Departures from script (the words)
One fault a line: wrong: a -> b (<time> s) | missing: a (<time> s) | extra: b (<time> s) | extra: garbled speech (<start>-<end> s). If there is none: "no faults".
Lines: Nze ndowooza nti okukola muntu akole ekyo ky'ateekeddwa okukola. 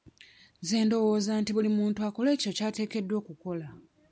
wrong: okukola -> buli (1.6 s)